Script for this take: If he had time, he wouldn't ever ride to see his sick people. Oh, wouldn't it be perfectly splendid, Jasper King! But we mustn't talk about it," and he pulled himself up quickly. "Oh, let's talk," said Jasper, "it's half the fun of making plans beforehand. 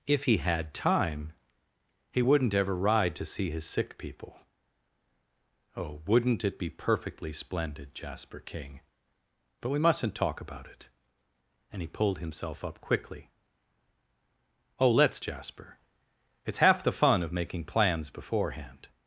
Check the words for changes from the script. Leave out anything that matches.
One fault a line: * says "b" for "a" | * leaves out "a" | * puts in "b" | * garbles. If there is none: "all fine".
* leaves out "talk said"